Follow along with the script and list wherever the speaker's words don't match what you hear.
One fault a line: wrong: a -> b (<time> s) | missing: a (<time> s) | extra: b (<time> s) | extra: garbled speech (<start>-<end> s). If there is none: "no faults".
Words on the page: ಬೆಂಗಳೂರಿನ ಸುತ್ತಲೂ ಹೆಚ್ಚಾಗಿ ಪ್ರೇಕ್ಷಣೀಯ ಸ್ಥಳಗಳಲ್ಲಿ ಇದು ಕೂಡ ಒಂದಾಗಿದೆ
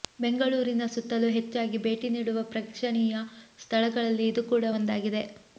extra: ಭೇಟಿ ನೀಡುವ (1.8 s)